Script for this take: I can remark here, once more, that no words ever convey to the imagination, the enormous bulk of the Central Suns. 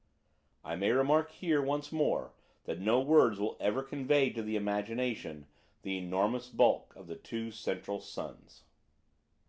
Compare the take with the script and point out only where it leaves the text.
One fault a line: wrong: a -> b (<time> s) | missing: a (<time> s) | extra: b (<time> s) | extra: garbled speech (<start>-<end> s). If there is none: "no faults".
wrong: can -> may (0.8 s)
extra: will (3.4 s)
extra: two (7.2 s)